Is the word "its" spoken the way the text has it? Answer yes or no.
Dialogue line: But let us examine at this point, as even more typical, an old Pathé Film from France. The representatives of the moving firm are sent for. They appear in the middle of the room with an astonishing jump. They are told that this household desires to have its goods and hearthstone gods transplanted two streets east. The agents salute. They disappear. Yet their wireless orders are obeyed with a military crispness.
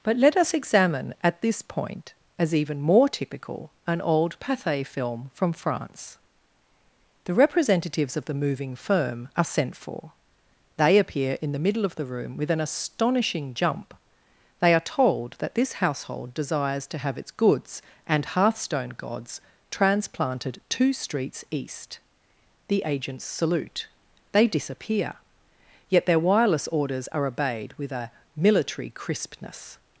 yes